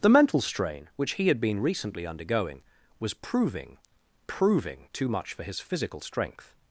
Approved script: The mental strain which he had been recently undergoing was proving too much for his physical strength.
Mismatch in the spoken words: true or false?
true